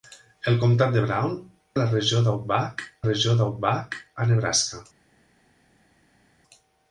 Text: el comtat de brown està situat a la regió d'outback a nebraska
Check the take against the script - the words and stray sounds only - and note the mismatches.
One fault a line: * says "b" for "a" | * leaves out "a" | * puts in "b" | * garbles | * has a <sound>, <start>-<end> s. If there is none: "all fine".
* says "a la regió d'outback" for "està situat a la"